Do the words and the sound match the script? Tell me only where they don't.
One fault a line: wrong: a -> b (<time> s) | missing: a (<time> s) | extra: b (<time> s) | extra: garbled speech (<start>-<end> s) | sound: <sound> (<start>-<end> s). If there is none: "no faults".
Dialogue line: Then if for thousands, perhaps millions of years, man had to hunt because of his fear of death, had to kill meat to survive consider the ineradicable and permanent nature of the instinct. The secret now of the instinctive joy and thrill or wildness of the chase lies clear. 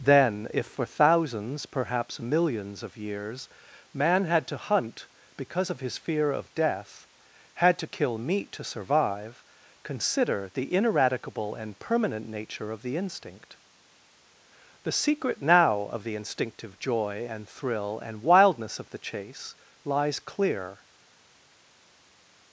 wrong: or -> and (18.1 s)